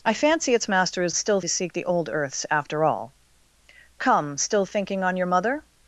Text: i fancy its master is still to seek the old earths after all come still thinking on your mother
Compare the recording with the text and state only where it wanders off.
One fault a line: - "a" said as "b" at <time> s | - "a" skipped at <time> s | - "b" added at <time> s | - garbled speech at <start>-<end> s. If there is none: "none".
none